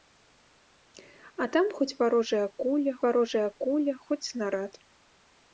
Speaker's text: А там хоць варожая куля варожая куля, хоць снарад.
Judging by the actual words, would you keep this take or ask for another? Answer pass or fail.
pass